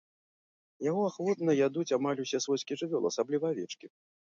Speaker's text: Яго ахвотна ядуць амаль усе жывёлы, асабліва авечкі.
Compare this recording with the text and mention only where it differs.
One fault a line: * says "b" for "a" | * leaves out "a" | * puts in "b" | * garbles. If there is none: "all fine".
* puts in "свойскія"